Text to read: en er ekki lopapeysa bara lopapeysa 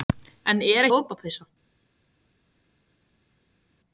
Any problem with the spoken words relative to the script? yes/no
yes